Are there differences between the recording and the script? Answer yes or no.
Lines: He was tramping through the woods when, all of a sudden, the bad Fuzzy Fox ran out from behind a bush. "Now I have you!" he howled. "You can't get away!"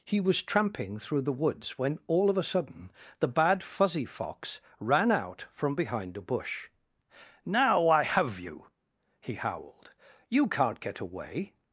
no